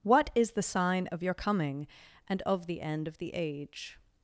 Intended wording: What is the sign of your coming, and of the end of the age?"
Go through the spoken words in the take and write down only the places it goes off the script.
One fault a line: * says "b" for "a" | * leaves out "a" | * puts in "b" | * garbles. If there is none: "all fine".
all fine